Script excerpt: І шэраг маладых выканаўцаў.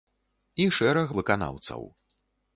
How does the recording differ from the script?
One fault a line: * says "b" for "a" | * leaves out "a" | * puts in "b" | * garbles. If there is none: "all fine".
* leaves out "маладых"